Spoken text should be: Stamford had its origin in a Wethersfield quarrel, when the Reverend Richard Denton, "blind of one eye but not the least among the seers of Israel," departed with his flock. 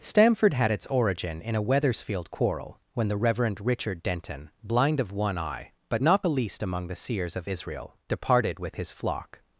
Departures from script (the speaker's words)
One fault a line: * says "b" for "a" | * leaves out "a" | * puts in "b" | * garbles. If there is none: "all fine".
all fine